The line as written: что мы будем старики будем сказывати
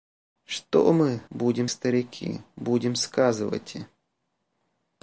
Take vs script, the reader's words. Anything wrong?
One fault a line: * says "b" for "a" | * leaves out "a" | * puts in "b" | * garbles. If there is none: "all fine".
all fine